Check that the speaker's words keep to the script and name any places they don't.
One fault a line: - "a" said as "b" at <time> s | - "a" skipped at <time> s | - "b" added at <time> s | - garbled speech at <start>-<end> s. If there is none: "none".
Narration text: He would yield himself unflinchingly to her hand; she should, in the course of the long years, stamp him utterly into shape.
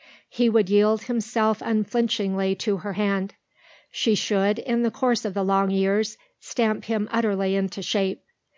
none